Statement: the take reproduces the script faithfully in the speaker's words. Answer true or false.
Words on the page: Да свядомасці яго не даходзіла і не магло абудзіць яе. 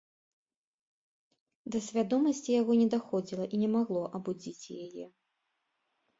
true